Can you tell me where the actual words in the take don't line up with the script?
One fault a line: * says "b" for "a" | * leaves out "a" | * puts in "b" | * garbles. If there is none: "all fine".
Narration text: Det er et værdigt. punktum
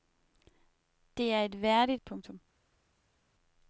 all fine